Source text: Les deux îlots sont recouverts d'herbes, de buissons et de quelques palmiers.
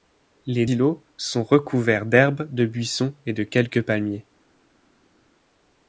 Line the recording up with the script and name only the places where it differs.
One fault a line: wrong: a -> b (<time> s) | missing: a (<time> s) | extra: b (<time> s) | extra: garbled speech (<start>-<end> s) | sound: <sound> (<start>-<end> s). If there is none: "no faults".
missing: deux (0.7 s)